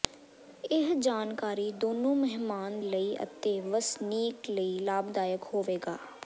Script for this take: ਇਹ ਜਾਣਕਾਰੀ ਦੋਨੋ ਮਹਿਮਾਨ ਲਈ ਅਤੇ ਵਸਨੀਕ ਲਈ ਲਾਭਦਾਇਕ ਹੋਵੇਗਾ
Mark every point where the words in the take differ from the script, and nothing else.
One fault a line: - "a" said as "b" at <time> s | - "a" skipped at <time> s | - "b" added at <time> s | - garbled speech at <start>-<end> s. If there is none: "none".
none